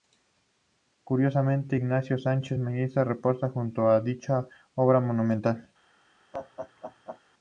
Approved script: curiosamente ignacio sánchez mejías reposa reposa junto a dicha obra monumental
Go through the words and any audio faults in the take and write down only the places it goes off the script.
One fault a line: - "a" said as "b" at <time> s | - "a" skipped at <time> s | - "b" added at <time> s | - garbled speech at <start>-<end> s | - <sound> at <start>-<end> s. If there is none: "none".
- "reposa" skipped at 3.5 s
- laugh at 6.3-7.2 s